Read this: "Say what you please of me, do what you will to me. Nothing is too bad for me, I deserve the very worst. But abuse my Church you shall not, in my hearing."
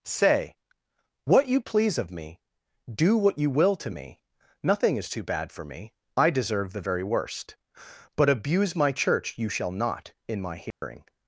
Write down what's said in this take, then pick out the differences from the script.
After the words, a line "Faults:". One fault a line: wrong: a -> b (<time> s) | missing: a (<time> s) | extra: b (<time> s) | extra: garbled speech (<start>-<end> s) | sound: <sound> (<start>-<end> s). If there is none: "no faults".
"Say what you please of me, do what you will to me. Nothing is too bad for me, I deserve the very worst. But abuse my Church you shall not, in my hearing."
Faults:
sound: dropout (10.7-10.8 s)